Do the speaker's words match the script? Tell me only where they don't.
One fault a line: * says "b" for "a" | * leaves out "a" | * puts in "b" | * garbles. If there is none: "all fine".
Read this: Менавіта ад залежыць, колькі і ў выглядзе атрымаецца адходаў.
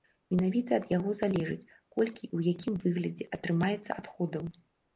* puts in "яго"
* puts in "якім"